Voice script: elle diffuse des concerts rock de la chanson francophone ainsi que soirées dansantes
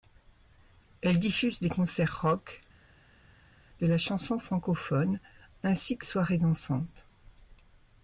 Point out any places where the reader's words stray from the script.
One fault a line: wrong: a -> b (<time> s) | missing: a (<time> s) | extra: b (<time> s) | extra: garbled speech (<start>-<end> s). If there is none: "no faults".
no faults